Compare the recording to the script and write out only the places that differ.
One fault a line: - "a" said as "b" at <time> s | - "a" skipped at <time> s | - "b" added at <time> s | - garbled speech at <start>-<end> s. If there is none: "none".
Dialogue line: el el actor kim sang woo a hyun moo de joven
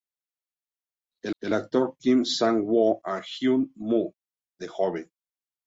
none